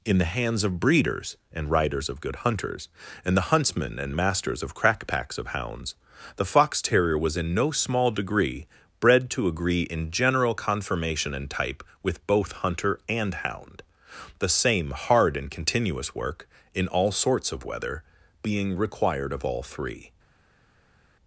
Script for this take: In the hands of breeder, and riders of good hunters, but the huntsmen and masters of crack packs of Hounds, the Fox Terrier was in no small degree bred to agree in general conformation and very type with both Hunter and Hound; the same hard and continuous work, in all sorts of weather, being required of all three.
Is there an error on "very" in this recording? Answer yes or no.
yes